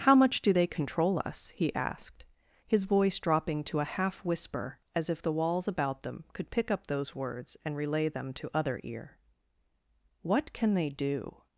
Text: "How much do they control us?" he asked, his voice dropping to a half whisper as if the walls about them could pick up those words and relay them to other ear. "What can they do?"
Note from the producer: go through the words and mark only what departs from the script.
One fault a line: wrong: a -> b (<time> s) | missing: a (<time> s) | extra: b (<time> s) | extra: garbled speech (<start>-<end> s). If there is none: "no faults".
no faults